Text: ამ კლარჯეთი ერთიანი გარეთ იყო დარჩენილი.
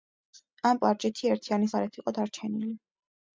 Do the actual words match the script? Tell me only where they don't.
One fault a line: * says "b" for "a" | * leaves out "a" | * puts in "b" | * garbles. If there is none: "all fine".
all fine